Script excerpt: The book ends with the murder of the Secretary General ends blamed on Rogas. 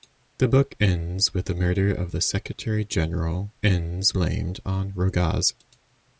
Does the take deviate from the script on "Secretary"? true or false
false